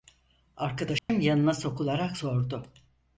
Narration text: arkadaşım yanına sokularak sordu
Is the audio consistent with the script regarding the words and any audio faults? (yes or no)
no